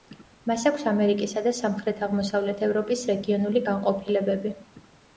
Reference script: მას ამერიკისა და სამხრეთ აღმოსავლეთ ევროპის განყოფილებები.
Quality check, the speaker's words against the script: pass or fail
fail